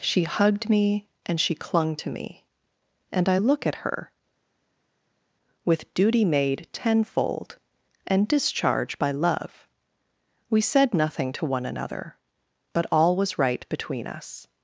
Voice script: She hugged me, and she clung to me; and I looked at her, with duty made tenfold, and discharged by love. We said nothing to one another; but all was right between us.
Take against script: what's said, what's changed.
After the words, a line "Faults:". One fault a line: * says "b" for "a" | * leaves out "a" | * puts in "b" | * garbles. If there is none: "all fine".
She hugged me, and she clung to me; and I look at her, with duty made tenfold, and discharge by love. We said nothing to one another; but all was right between us.
Faults:
* says "look" for "looked"
* says "discharge" for "discharged"